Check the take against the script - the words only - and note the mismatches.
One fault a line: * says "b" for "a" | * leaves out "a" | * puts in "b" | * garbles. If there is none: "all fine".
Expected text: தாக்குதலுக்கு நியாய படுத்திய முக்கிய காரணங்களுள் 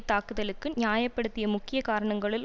all fine